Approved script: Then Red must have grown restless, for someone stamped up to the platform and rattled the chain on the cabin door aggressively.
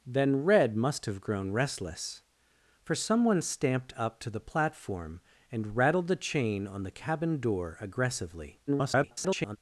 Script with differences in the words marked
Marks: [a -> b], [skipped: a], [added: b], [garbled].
Then Red must have grown restless, for someone stamped up to the platform and rattled the chain on the cabin door aggressively. [garbled]